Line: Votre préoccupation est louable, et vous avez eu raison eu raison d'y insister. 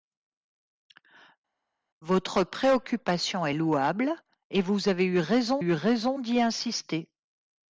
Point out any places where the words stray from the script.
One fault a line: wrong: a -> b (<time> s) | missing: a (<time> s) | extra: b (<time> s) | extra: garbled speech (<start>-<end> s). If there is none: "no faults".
no faults